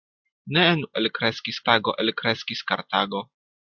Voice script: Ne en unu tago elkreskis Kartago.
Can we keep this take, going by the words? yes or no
no